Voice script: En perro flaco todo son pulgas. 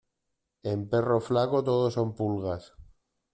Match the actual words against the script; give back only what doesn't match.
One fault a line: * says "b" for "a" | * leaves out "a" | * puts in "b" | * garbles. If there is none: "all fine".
all fine